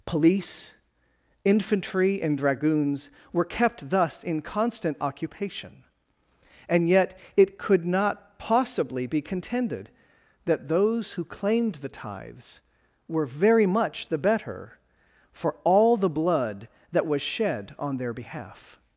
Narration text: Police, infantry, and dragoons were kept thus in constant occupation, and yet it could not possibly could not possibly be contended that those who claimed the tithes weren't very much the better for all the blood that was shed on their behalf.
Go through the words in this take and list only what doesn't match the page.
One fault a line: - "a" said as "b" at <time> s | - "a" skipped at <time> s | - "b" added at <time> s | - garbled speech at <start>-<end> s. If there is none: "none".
- "could not possibly" skipped at 9.1 s
- "weren't" said as "were" at 13.1 s